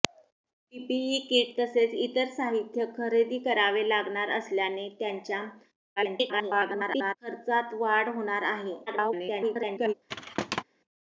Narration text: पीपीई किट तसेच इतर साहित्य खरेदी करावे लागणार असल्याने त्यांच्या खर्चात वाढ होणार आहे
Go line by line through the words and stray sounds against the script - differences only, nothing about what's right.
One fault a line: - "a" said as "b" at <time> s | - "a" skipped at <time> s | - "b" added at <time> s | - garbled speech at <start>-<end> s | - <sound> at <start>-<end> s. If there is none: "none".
- garbled speech at 6.0-7.1 s
- garbled speech at 8.9-9.9 s
- thud at 10.1-10.6 s